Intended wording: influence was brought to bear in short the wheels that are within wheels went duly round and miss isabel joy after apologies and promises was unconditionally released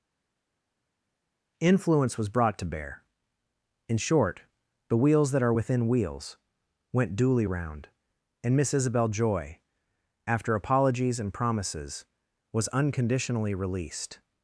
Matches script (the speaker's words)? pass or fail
pass